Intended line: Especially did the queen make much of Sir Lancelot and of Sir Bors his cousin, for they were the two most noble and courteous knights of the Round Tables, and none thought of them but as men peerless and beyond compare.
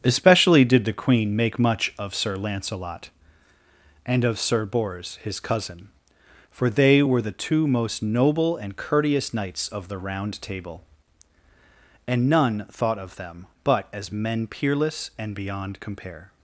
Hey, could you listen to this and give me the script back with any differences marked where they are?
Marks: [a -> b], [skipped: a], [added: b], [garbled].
Especially did the queen make much of Sir Lancelot and of Sir Bors his cousin, for they were the two most noble and courteous knights of the Round [Tables, -> Table] and none thought of them but as men peerless and beyond compare.